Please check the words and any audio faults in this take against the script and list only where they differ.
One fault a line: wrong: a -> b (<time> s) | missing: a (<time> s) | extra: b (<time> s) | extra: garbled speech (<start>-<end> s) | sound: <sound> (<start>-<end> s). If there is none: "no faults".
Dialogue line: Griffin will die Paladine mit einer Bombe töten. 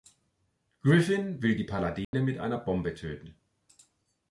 sound: dropout (2.0-2.1 s)